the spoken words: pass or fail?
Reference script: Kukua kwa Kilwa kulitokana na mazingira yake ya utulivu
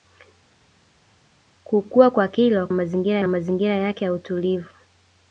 fail